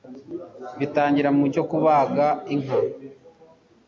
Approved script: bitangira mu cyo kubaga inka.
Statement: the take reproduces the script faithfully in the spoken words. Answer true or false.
true